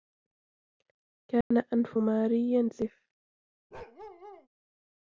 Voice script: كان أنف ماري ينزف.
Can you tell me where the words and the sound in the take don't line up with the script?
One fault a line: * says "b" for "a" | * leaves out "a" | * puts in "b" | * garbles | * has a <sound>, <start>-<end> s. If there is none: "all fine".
* has a dropout, 1.4-1.5 s
* has a bark, 3.7-4.5 s